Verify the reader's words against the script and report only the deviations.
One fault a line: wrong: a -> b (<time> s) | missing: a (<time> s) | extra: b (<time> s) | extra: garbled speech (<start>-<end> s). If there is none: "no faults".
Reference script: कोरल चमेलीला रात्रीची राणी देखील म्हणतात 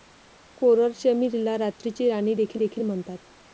extra: देखील (2.5 s)